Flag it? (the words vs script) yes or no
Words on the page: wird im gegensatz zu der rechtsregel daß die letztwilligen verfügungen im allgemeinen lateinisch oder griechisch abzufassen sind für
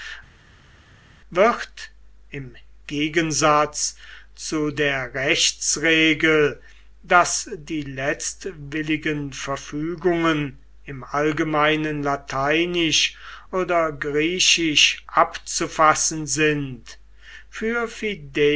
no